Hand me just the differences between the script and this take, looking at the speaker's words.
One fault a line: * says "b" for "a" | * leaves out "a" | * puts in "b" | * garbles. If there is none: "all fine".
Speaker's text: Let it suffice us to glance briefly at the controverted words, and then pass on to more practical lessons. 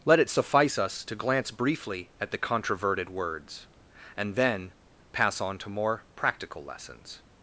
all fine